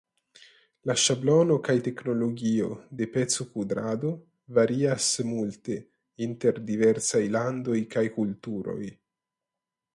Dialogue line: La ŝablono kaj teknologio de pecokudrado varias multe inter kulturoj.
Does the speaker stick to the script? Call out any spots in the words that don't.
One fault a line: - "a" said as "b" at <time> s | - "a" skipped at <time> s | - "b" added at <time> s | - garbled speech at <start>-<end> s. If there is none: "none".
- "diversaj landoj kaj" added at 6.7 s